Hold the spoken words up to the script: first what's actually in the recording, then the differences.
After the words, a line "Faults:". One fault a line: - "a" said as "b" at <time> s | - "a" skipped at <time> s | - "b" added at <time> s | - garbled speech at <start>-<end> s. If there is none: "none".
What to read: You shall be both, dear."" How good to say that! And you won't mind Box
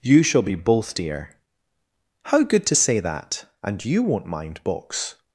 You shall be both, dear."" How good to say that! And you won't mind Box
Faults:
none